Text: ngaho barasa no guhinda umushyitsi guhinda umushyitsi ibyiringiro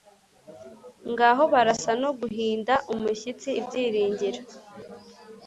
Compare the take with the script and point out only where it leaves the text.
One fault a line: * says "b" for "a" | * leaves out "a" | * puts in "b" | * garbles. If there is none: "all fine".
* leaves out "guhinda umushyitsi"